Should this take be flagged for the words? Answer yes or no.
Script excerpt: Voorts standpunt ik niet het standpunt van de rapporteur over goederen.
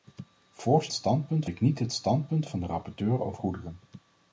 no